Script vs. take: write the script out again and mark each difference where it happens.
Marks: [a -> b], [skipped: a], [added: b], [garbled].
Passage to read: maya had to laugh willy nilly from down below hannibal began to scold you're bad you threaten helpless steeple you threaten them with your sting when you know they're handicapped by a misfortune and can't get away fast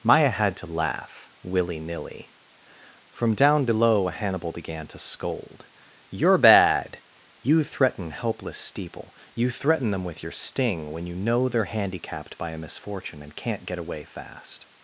maya had to laugh willy nilly from down below hannibal began to scold you're bad you threaten helpless steeple you threaten them with your sting when you know they're handicapped by a misfortune and can't get away fast